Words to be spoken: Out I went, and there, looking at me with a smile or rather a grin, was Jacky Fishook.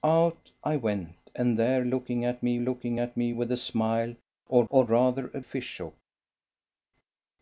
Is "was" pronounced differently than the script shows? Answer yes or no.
yes